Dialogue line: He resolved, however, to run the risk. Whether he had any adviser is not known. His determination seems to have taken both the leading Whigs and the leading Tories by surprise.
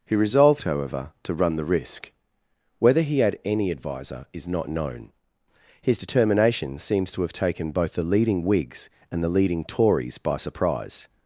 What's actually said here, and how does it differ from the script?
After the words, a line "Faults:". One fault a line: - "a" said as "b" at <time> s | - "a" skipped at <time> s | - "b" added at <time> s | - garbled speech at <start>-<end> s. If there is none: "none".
He resolved, however, to run the risk. Whether he had any adviser is not known. His determination seems to have taken both the leading Whigs and the leading Tories by surprise.
Faults:
none